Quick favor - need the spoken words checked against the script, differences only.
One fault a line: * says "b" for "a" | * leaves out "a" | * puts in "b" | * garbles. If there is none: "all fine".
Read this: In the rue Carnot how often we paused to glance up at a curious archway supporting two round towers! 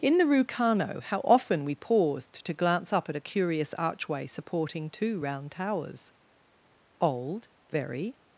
* puts in "Old very"